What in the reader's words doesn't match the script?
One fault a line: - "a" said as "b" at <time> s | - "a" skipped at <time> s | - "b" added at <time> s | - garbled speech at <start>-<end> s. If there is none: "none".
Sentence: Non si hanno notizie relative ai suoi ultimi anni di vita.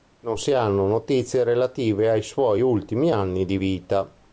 none